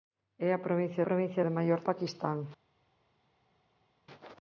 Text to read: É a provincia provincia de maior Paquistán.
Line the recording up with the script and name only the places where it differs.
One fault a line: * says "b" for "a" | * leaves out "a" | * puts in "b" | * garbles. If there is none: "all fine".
all fine